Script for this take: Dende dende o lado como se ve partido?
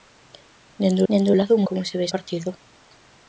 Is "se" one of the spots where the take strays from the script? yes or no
no